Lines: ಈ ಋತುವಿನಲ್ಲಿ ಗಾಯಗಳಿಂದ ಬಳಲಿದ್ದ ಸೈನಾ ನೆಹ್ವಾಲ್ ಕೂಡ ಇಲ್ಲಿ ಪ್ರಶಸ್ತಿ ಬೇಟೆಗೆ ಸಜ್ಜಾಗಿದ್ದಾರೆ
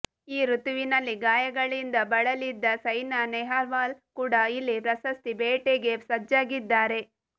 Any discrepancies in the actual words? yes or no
no